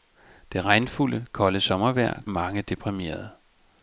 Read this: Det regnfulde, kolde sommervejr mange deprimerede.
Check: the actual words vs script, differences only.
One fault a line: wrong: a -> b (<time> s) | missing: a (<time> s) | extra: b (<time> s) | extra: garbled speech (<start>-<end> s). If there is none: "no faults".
no faults